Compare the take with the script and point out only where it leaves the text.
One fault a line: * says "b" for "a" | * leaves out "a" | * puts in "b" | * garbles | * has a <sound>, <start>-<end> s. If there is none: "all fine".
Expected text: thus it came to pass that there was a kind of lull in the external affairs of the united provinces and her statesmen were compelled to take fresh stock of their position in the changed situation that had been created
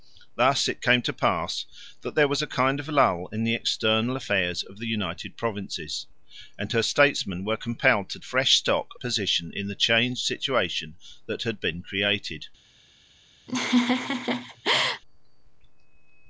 * leaves out "take"
* leaves out "of their"
* has a laugh, 13.5-15.0 s